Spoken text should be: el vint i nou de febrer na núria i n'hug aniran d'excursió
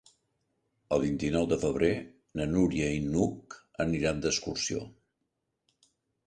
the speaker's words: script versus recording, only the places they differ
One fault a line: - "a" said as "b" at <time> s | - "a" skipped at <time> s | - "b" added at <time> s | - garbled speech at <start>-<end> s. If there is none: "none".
none